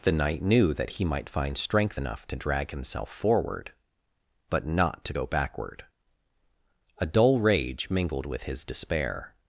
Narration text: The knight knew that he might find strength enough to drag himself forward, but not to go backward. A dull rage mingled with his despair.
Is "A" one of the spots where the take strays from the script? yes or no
no